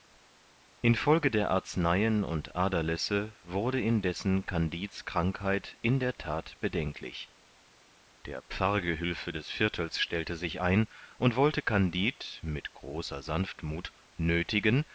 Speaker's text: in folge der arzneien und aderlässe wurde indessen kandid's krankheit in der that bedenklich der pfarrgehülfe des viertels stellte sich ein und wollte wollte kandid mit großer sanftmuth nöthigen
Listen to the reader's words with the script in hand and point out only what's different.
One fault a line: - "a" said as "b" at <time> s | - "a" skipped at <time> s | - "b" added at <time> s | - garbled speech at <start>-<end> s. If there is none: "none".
- "wollte" skipped at 11.6 s